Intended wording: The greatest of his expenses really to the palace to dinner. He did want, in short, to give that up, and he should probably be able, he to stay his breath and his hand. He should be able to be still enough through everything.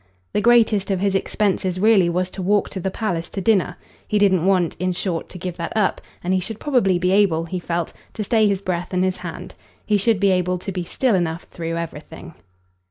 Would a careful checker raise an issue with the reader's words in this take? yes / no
yes